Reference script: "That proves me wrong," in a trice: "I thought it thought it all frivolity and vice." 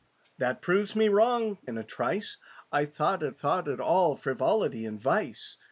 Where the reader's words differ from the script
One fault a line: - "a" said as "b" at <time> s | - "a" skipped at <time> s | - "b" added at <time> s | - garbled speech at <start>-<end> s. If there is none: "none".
none